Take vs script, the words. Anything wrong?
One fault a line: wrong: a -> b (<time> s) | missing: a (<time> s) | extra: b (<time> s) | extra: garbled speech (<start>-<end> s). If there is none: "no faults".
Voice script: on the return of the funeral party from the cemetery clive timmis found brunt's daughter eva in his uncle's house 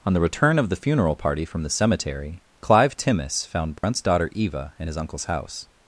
no faults